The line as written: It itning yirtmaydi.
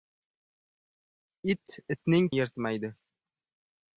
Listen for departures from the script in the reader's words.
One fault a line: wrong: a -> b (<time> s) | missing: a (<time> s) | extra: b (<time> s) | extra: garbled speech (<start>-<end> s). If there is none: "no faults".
no faults